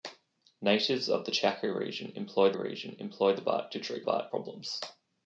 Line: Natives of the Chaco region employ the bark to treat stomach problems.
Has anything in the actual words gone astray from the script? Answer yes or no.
yes